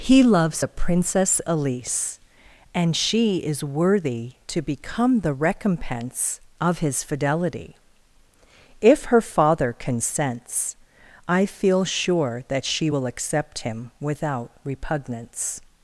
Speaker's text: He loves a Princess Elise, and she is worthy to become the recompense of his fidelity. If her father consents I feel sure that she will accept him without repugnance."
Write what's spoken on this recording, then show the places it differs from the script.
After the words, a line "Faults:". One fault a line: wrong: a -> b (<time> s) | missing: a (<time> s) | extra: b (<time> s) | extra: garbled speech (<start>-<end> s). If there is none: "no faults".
He loves a Princess Elise, and she is worthy to become the recompense of his fidelity. If her father consents I feel sure that she will accept him without repugnance."
Faults:
no faults